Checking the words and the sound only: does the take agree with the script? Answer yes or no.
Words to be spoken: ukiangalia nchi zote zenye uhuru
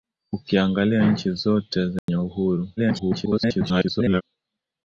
no